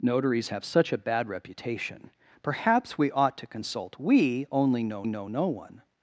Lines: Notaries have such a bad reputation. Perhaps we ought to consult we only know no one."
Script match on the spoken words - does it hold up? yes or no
no